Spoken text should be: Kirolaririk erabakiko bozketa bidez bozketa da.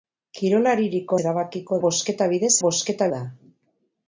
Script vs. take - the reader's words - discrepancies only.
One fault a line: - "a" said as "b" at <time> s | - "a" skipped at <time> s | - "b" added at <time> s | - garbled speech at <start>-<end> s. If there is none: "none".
none